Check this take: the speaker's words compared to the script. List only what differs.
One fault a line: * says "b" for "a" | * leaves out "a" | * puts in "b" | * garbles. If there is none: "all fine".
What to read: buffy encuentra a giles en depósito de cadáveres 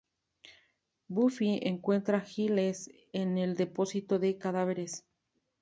* puts in "el"